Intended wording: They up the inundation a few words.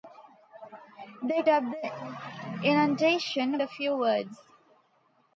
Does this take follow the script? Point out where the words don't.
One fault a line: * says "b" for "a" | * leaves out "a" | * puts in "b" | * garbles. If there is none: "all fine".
all fine